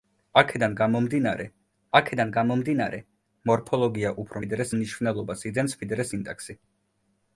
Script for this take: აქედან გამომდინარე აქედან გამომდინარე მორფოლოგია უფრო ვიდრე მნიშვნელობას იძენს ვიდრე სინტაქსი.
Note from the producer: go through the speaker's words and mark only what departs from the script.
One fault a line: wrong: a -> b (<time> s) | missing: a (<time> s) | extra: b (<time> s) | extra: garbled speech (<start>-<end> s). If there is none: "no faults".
no faults